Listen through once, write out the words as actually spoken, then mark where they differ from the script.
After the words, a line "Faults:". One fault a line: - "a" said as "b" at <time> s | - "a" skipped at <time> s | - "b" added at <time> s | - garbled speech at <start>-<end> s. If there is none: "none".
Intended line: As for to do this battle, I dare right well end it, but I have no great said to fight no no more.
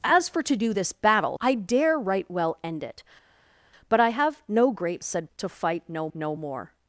As for to do this battle, I dare right well end it, but I have no great said to fight no no more.
Faults:
none